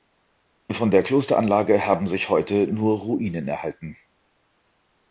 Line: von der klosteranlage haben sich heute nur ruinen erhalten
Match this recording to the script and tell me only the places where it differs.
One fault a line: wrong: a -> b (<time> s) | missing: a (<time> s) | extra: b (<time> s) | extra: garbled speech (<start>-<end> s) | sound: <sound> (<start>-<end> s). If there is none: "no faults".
no faults